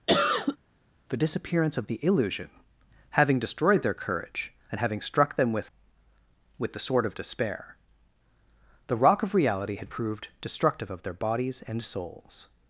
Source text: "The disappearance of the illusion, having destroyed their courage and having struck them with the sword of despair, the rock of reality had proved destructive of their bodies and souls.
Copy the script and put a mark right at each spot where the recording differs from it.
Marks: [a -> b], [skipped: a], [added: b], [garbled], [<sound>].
[cough] "The disappearance of the illusion, having destroyed their courage and having struck them with [added: with] the sword of despair, the rock of reality had proved destructive of their bodies and souls.